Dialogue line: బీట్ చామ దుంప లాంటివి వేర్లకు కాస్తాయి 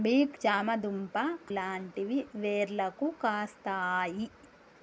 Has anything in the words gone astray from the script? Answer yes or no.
no